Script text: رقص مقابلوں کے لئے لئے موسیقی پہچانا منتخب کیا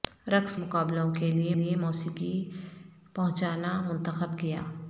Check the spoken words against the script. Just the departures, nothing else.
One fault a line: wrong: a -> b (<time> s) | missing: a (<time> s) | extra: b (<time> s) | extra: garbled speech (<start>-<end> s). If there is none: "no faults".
no faults